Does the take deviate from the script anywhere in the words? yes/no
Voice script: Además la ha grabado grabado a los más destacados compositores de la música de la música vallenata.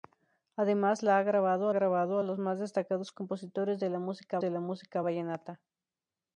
no